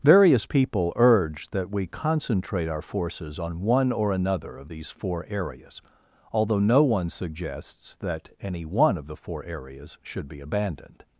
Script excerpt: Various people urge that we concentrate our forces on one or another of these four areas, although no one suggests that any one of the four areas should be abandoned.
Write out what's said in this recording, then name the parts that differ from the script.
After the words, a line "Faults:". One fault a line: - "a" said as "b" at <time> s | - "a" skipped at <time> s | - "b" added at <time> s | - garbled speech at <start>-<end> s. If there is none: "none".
Various people urge that we concentrate our forces on one or another of these four areas, although no one suggests that any one of the four areas should be abandoned.
Faults:
none